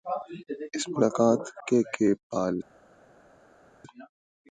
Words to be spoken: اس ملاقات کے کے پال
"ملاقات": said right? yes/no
yes